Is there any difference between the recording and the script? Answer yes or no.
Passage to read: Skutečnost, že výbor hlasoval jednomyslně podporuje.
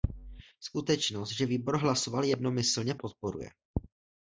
no